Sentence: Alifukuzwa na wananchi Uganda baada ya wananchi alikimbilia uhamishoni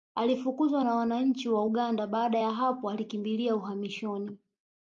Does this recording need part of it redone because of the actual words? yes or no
yes